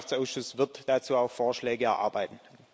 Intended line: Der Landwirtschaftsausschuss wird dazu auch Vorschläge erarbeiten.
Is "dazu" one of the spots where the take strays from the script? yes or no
no